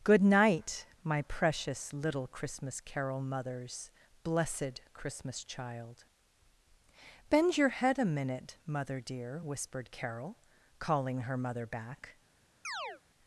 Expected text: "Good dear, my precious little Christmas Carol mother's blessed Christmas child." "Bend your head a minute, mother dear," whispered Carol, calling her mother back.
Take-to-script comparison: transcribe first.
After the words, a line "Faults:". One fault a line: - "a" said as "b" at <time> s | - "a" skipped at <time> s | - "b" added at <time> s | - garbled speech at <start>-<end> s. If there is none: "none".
"Good night, my precious little Christmas Carol mother's blessed Christmas child." "Bend your head a minute, mother dear," whispered Carol, calling her mother back.
Faults:
- "dear" said as "night" at 0.2 s